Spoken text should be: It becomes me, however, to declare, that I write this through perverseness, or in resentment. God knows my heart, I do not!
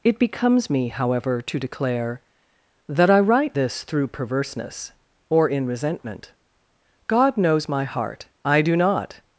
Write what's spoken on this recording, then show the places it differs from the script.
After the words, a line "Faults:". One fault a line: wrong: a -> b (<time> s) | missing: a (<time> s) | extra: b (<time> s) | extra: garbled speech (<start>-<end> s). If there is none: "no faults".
It becomes me, however, to declare, that I write this through perverseness, or in resentment. God knows my heart, I do not!
Faults:
no faults